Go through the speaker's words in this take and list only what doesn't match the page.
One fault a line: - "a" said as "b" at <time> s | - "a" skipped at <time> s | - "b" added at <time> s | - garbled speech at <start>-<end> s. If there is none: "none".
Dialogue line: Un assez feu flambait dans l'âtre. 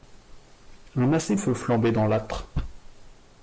none